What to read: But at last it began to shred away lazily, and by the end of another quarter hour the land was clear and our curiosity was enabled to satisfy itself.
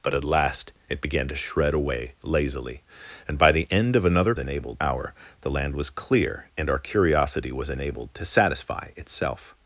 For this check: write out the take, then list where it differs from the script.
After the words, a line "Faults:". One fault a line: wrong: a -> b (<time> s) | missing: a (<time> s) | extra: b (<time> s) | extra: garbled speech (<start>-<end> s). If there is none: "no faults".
But at last it began to shred away lazily, and by the end of another enabled hour the land was clear and our curiosity was enabled to satisfy itself.
Faults:
wrong: quarter -> enabled (4.4 s)